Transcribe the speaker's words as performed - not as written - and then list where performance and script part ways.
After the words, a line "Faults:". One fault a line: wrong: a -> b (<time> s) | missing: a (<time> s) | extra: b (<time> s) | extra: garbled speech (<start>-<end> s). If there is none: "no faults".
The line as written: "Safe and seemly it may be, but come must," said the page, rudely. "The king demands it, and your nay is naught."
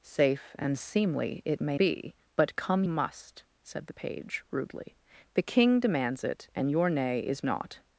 "Safe and seemly it may be, but come must," said the page, rudely. "The king demands it, and your nay is naught."
Faults:
no faults